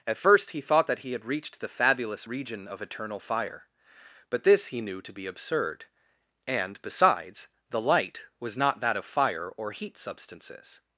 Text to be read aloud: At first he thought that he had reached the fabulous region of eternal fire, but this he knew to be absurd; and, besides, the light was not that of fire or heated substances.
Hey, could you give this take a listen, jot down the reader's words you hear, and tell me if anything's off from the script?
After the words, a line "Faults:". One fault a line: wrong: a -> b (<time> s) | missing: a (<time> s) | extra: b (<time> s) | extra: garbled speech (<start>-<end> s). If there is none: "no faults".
At first he thought that he had reached the fabulous region of eternal fire, but this he knew to be absurd; and, besides, the light was not that of fire or heat substances.
Faults:
wrong: heated -> heat (9.7 s)